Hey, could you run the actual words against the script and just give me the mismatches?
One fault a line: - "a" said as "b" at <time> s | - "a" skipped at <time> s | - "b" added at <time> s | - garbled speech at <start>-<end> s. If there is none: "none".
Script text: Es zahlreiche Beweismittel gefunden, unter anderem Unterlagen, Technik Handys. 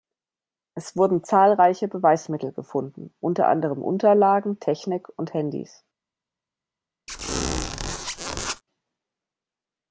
- "wurden" added at 0.9 s
- "und" added at 5.2 s